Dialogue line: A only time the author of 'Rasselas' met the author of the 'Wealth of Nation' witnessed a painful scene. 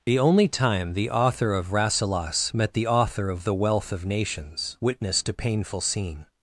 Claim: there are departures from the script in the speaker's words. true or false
true